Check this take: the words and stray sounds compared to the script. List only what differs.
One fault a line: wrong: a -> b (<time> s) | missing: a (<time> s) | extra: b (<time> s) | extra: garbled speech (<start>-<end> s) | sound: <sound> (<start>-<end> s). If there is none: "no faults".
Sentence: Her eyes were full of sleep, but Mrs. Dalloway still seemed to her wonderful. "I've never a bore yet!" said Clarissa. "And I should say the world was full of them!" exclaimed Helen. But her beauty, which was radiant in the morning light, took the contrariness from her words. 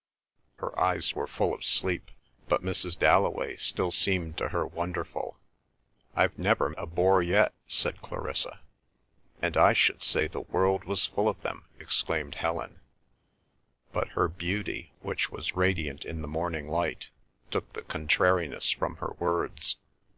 no faults